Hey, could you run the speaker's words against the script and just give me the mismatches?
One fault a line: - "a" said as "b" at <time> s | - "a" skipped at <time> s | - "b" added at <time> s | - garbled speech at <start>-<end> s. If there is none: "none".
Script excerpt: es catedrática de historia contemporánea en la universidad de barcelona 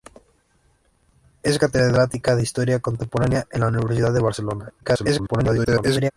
- garbled speech at 4.8-6.1 s